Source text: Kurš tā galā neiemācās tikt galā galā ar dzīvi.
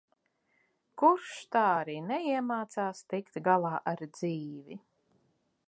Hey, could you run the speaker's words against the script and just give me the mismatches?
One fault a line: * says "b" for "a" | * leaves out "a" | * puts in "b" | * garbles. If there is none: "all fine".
* says "arī" for "galā"
* leaves out "galā"